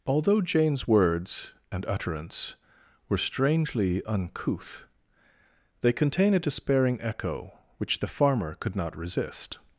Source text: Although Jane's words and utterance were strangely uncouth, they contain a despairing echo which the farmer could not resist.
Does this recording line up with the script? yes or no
yes